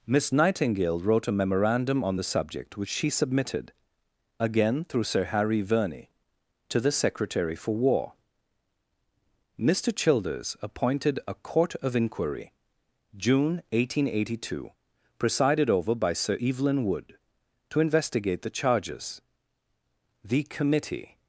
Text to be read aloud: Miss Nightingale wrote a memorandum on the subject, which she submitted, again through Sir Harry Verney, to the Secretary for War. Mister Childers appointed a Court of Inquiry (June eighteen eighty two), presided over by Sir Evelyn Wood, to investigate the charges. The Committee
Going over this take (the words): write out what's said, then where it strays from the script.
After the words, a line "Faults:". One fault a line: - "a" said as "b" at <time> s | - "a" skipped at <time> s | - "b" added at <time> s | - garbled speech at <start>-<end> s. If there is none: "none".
Miss Nightingale wrote a memorandum on the subject, which she submitted, again through Sir Harry Verney, to the Secretary for War. Mister Childers appointed a Court of Inquiry (June eighteen eighty two), presided over by Sir Evelyn Wood, to investigate the charges. The Committee
Faults:
none